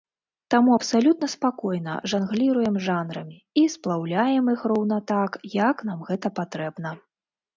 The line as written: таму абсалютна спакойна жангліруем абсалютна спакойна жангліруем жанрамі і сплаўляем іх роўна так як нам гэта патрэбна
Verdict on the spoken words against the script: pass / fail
fail